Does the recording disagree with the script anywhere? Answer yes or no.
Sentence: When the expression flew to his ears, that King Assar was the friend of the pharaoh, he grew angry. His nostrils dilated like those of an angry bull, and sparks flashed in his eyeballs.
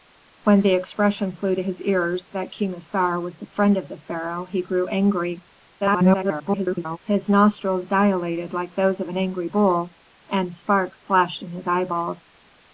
yes